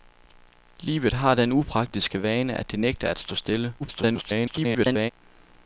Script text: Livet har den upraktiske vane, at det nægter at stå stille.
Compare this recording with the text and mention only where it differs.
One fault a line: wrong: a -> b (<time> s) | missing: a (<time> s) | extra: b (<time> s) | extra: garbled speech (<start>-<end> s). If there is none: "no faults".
extra: garbled speech (3.8-5.1 s)